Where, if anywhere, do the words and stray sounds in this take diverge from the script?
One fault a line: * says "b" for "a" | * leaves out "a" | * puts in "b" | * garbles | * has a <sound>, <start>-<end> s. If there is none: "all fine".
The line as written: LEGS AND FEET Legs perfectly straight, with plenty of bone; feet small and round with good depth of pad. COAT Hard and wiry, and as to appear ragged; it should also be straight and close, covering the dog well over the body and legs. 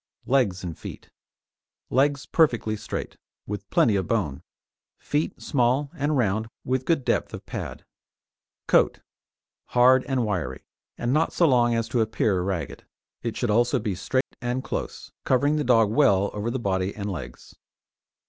* puts in "not so long"
* has a dropout, 14.2-14.3 s